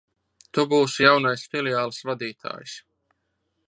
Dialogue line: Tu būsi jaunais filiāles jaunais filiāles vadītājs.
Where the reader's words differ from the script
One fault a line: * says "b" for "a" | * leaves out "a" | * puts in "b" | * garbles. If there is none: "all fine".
* leaves out "jaunais filiāles"